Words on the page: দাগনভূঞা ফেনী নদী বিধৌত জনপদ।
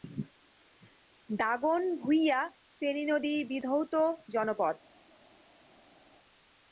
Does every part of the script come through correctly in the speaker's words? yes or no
yes